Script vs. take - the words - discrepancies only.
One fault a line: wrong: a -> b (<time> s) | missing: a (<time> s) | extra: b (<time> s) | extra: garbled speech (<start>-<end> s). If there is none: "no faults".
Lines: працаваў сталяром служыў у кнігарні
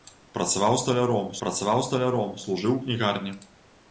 extra: працаваў сталяром (1.4 s)